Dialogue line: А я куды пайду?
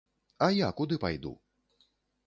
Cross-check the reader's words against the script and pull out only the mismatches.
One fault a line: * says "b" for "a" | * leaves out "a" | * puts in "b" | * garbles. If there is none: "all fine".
all fine